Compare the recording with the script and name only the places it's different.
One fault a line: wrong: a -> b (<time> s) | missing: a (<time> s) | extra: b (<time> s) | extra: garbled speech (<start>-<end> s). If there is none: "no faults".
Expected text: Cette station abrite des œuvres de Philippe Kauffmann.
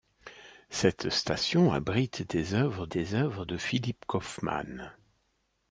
extra: des œuvres (2.9 s)